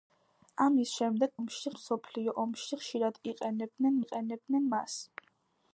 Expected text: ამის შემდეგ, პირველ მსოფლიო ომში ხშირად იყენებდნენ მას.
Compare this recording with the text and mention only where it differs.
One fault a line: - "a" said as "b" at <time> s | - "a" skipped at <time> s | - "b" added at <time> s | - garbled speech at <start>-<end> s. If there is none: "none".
- "პირველ" said as "ომში" at 1.4 s
- "იყენებდნენ" added at 4.1 s